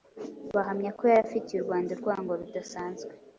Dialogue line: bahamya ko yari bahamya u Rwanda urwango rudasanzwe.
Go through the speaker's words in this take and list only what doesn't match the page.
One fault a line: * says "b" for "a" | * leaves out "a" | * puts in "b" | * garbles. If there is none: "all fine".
* says "afitiye" for "bahamya"